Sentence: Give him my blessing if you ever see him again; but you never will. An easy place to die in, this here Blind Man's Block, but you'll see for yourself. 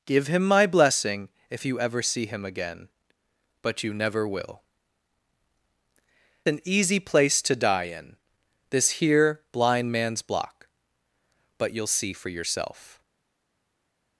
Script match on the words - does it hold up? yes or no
yes